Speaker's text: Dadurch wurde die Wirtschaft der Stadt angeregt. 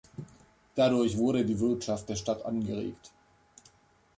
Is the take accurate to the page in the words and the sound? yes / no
yes